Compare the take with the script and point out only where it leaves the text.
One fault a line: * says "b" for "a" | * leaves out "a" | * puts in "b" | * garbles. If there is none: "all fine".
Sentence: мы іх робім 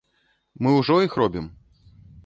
* puts in "ўжо"